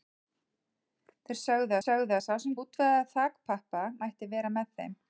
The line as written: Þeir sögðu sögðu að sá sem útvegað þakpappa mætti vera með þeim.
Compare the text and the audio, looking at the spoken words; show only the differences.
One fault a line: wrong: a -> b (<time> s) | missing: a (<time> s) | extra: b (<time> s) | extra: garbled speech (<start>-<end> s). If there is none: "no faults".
no faults